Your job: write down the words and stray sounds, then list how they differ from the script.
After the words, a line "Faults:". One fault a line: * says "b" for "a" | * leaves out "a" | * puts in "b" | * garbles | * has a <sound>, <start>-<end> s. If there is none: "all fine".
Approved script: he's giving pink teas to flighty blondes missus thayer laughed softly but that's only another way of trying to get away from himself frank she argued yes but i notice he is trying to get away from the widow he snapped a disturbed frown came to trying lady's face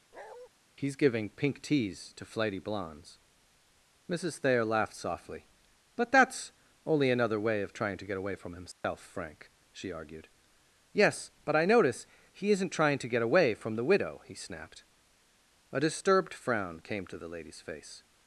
he's giving pink teas to flighty blondes missus thayer laughed softly but that's only another way of trying to get away from himself frank she argued yes but i notice he isn't trying to get away from the widow he snapped a disturbed frown came to the lady's face
Faults:
* has a bark, 0.1-0.5 s
* has a dropout, 8.7-8.8 s
* says "isn't" for "is"
* says "the" for "trying"